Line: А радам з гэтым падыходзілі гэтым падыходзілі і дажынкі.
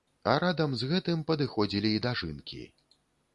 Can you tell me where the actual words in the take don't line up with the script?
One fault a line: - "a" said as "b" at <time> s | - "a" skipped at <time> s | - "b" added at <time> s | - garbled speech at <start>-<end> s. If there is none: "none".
- "гэтым падыходзілі" skipped at 1.9 s